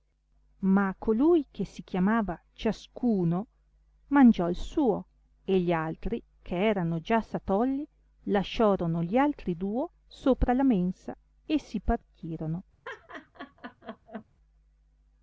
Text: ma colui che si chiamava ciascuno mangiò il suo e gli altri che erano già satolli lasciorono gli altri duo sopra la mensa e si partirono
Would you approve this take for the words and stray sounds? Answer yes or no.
no